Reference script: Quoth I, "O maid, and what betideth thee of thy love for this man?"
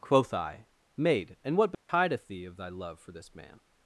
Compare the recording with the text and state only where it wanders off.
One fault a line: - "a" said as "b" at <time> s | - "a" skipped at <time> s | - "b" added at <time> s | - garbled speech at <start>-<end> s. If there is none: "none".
- "O" skipped at 0.7 s